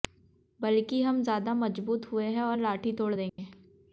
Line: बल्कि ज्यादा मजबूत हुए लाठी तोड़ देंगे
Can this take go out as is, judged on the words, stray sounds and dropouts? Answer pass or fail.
fail